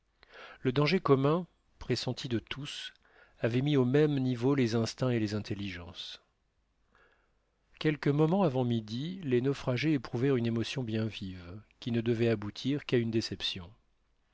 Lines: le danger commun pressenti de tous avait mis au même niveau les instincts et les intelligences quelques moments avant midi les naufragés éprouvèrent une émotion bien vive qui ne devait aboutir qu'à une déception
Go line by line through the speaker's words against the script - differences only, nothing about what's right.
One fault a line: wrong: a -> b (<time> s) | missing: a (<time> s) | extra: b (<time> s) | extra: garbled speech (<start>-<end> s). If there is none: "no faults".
no faults